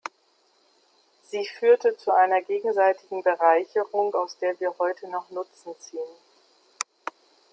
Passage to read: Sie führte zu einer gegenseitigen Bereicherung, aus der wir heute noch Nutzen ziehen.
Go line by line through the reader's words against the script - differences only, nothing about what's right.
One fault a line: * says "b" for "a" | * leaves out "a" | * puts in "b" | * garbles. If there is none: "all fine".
all fine